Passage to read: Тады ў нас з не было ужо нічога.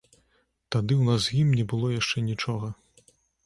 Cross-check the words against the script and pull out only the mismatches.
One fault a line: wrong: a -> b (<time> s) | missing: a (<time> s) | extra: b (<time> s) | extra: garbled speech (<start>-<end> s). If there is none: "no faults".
extra: ім (1.4 s)
wrong: ужо -> яшчэ (2.0 s)